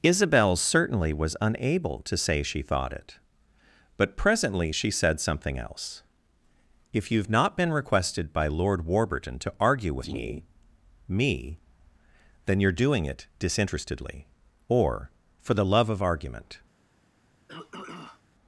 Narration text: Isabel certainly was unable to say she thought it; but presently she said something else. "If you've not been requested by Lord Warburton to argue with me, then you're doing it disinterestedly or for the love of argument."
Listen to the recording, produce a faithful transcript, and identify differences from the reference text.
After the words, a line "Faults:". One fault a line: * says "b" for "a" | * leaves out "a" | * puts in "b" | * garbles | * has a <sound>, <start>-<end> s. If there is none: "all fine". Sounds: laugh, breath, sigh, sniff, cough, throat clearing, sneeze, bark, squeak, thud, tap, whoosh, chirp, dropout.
Isabel certainly was unable to say she thought it; but presently she said something else. "If you've not been requested by Lord Warburton to argue with me me, then you're doing it disinterestedly or for the love of argument."
Faults:
* puts in "me"
* has a throat clearing, 17.5-18.2 s